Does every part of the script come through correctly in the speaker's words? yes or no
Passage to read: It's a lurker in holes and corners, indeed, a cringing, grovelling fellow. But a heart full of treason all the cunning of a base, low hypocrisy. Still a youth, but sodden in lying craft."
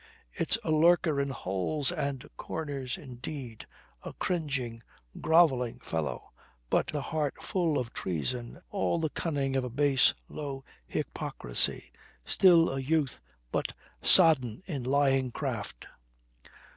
yes